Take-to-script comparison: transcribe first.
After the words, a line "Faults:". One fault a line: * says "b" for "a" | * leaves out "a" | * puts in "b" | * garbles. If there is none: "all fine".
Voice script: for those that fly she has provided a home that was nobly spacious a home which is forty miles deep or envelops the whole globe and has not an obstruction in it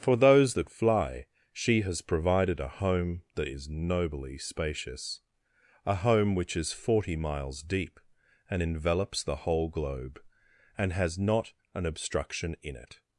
for those that fly she has provided a home that is nobly spacious a home which is forty miles deep and envelops the whole globe and has not an obstruction in it
Faults:
* says "is" for "was"
* says "and" for "or"